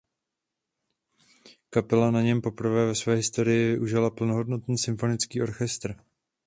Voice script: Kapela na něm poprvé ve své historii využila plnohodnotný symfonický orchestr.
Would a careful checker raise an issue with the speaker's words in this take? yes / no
no